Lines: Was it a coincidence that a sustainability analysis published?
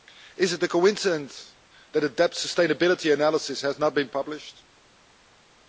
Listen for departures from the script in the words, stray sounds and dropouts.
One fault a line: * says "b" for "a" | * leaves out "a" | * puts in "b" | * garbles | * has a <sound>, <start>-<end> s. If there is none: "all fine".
* says "Is" for "Was"
* puts in "debt"
* puts in "has not been"